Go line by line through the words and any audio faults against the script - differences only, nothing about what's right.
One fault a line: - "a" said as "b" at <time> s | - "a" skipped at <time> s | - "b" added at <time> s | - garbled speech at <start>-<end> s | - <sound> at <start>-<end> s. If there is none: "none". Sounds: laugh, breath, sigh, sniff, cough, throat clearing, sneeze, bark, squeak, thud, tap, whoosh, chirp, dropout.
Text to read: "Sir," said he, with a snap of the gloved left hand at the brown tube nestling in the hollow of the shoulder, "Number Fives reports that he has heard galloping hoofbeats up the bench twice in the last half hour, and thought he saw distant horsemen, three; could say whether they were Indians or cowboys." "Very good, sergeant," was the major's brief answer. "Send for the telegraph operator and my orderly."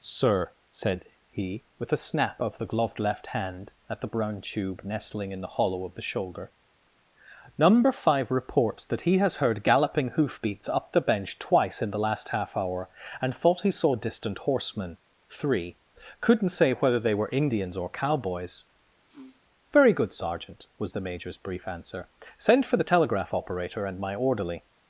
- "Fives" said as "Five" at 7.9 s
- "could" said as "couldn't" at 16.2 s
- sniff at 19.1-19.4 s